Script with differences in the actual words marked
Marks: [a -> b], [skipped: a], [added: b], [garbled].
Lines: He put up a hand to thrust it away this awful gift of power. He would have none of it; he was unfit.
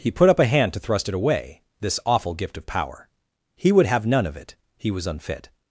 He put up a hand to thrust it away this awful gift of power. He would have none of it; he was unfit.